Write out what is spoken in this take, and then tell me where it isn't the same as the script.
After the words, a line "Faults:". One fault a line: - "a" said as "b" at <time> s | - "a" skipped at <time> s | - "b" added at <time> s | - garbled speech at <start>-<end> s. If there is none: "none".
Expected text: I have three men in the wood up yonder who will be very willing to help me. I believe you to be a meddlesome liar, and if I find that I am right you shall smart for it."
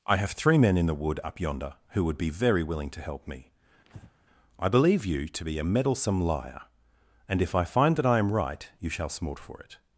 I have three men in the wood up yonder who would be very willing to help me. I believe you to be a meddlesome liar, and if I find that I am right you shall smart for it."
Faults:
- "will" said as "would" at 2.0 s